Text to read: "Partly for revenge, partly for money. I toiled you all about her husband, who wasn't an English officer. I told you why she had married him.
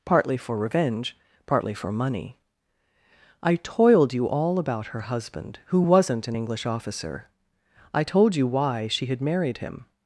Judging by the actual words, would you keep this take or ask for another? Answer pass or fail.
pass